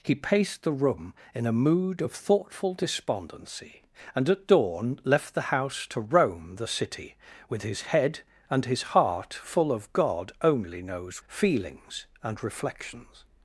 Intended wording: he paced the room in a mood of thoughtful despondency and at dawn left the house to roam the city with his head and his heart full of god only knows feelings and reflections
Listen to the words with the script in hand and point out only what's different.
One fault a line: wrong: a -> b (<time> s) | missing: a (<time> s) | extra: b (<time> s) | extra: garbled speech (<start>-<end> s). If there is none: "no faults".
no faults